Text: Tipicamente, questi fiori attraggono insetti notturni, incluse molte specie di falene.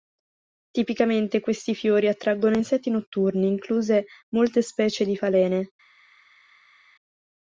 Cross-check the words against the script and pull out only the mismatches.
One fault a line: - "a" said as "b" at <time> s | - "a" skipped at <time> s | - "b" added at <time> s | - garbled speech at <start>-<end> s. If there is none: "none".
none